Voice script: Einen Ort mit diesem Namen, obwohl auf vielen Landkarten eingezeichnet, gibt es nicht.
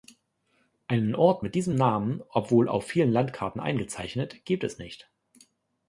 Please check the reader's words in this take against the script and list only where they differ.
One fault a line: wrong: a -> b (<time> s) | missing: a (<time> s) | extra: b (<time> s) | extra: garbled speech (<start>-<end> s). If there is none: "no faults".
no faults